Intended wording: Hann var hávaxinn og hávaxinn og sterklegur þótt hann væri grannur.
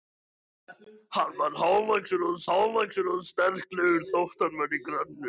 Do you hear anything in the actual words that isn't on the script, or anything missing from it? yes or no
no